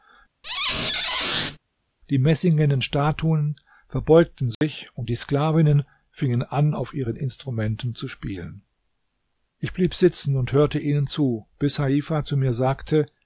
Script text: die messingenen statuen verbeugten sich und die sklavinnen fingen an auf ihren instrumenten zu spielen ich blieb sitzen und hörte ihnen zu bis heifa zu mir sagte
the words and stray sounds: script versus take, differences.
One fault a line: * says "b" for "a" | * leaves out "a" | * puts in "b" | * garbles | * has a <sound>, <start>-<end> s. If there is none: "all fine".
* has a squeak, 0.4-1.6 s
* has a dropout, 4.5-4.6 s